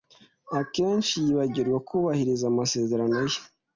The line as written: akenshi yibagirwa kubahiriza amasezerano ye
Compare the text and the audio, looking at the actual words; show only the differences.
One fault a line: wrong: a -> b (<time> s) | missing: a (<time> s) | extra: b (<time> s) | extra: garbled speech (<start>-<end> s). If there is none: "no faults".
no faults